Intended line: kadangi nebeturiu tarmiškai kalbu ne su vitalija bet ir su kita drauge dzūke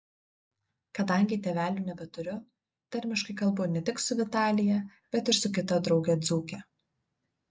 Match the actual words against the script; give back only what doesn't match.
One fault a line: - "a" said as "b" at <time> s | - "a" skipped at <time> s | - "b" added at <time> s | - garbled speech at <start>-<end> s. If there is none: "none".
- "tėvelių" added at 1.5 s
- "tik" added at 3.9 s